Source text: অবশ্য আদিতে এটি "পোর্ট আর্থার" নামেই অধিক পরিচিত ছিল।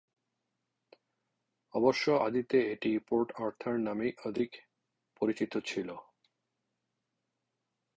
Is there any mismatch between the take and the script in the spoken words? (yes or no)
no